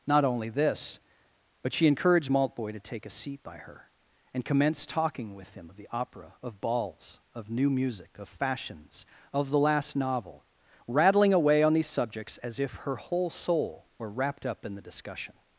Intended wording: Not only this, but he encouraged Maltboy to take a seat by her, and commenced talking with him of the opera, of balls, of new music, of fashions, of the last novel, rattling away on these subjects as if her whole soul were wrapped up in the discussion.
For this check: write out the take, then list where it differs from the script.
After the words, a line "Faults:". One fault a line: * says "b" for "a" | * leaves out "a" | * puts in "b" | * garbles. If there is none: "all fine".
Not only this, but she encouraged Maltboy to take a seat by her, and commenced talking with him of the opera, of balls, of new music, of fashions, of the last novel, rattling away on these subjects as if her whole soul were wrapped up in the discussion.
Faults:
* says "she" for "he"